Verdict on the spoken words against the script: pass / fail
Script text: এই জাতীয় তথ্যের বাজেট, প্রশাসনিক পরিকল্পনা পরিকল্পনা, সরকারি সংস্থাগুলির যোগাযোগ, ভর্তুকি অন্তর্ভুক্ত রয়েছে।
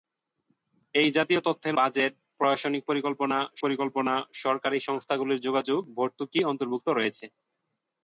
pass